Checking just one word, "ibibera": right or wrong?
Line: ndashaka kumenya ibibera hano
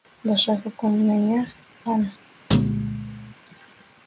wrong